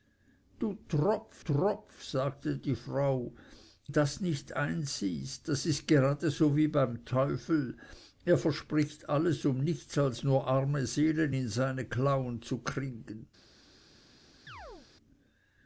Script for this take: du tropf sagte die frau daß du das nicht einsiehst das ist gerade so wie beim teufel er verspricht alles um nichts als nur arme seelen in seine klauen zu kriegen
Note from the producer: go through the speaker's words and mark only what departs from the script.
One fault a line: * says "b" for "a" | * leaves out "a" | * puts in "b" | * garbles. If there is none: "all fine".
* puts in "tropf"
* leaves out "daß du"